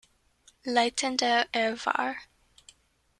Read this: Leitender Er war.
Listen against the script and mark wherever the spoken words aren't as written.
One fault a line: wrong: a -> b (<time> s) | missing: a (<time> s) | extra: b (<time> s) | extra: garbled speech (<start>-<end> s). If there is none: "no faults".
no faults